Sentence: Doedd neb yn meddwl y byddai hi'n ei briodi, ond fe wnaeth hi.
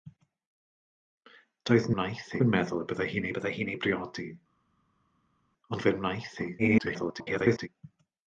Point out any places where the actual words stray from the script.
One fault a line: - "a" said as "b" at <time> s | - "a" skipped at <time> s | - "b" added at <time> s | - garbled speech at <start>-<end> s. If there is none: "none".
- "neb" said as "wnaeth" at 1.9 s
- "byddai hi'n" added at 3.4 s
- garbled speech at 6.6-7.7 s